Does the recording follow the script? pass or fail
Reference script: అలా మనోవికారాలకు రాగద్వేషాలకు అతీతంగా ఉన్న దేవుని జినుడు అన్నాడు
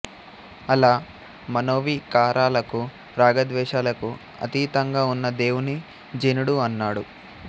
pass